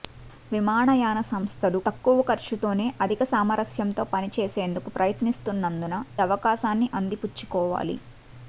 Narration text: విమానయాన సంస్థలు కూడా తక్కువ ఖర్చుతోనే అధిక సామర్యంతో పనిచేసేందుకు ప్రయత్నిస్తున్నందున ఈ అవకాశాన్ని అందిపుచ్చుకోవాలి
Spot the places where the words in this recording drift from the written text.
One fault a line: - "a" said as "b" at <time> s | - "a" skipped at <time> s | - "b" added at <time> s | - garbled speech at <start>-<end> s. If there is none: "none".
- "కూడా" skipped at 1.8 s
- "ఈ" skipped at 6.0 s